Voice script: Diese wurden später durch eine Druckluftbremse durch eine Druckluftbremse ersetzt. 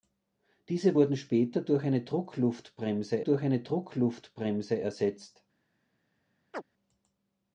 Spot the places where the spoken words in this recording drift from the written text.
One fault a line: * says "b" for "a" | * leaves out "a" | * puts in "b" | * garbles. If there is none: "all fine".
all fine